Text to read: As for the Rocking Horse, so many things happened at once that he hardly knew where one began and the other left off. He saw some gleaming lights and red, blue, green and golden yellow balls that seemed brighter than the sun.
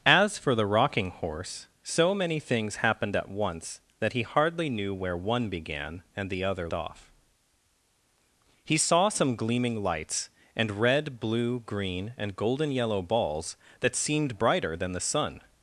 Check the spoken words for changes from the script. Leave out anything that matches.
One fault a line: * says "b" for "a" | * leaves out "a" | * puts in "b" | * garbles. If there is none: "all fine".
* leaves out "left"